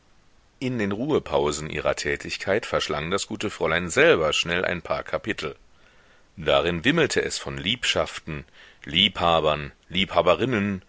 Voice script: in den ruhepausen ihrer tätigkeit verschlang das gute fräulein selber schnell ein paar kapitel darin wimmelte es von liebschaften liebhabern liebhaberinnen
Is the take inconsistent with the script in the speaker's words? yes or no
no